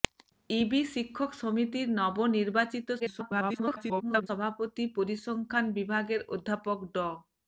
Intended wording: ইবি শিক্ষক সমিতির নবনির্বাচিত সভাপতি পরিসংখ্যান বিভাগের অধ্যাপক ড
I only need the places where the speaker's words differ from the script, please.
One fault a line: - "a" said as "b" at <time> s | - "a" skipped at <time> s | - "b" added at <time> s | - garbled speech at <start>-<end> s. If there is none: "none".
- garbled speech at 3.0-4.3 s